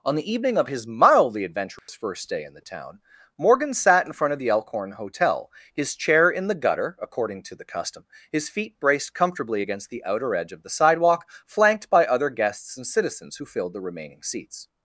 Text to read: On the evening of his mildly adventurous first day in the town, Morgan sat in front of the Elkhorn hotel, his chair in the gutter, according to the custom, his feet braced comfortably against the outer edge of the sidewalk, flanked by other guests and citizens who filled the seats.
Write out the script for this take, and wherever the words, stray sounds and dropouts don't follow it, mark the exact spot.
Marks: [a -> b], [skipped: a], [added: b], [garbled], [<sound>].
On the evening of his mildly adventurous [dropout] first day in the town, Morgan sat in front of the Elkhorn hotel, his chair in the gutter, according to the custom, his feet braced comfortably against the outer edge of the sidewalk, flanked by other guests and citizens who filled the [added: remaining] seats.